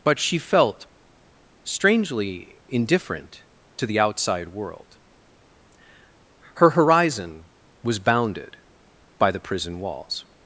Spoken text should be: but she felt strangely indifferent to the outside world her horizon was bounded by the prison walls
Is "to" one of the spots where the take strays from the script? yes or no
no